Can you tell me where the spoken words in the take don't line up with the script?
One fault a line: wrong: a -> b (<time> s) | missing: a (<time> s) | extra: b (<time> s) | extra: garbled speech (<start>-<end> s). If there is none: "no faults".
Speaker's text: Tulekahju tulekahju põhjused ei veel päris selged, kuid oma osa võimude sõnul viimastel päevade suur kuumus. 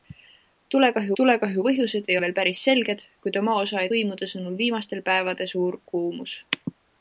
no faults